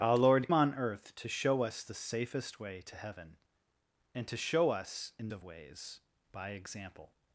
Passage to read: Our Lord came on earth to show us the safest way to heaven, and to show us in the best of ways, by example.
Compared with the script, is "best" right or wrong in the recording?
wrong